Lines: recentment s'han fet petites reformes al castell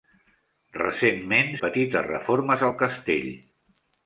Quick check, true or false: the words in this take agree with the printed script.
false